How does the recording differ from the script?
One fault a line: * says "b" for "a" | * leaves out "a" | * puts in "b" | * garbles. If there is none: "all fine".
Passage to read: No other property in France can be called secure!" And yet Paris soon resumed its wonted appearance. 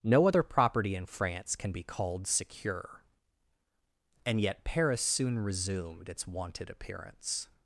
all fine